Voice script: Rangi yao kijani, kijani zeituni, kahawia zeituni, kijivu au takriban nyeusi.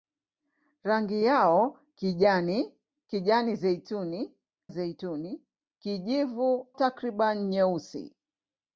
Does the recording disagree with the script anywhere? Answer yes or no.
yes